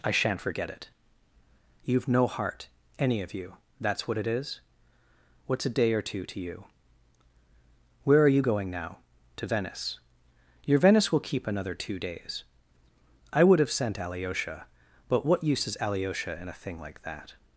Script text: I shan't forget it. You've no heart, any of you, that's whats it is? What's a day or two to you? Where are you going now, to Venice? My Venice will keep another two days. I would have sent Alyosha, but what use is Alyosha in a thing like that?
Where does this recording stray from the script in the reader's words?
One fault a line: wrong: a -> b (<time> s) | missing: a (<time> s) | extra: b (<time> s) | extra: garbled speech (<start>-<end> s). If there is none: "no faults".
wrong: whats -> what (4.1 s)
wrong: My -> Your (10.7 s)